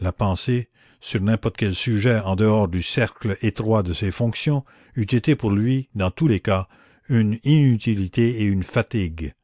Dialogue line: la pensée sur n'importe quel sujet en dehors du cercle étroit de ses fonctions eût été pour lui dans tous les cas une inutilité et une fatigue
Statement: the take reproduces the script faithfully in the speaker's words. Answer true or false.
true